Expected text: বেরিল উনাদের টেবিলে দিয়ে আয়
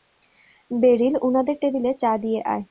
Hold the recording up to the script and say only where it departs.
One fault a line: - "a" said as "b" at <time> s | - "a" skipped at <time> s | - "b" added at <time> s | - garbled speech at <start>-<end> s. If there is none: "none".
- "চা" added at 1.9 s